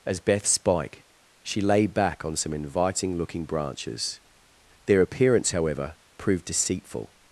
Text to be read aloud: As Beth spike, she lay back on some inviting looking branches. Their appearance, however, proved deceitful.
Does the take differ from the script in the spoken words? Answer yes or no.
no